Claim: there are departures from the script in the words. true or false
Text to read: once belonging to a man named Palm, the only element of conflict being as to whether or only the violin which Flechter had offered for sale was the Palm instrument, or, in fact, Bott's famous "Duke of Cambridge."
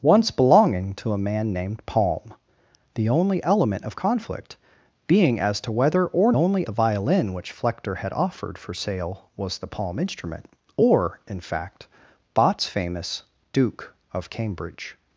false